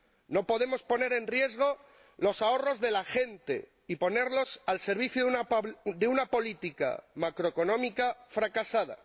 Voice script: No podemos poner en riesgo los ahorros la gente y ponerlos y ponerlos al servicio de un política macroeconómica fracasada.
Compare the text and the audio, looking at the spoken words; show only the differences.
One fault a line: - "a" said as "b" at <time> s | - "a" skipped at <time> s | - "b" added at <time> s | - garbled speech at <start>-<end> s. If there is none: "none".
- "de" added at 2.8 s
- "y ponerlos" skipped at 4.6 s
- "un" said as "una" at 6.1 s